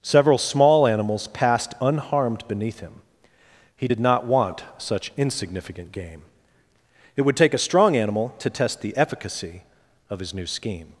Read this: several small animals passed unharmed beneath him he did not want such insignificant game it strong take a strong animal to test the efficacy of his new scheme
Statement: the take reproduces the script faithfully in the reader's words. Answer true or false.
false